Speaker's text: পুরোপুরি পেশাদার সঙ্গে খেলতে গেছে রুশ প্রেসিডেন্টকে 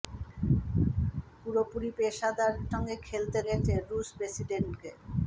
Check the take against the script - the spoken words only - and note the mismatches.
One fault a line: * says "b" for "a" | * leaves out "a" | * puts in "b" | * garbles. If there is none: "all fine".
all fine